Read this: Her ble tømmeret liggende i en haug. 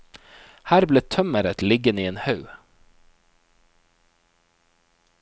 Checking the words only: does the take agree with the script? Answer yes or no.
yes